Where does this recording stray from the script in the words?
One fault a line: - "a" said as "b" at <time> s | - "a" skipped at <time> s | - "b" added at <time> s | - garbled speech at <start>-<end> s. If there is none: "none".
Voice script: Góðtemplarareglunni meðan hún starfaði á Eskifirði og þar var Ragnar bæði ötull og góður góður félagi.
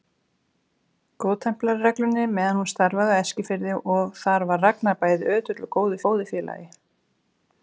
none